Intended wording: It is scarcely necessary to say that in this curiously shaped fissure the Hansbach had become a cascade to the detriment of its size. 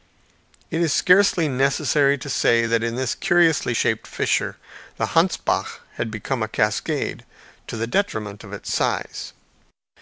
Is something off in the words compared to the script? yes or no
no